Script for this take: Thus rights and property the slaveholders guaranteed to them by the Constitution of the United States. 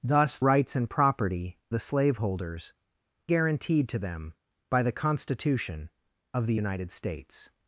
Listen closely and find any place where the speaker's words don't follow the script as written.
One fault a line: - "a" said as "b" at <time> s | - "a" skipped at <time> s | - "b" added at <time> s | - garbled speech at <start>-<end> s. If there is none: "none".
none